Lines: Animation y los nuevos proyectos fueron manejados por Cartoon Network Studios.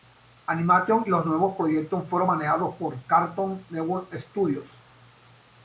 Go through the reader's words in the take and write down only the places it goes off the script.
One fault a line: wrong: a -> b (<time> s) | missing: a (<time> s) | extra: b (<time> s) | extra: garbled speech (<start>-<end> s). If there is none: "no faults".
no faults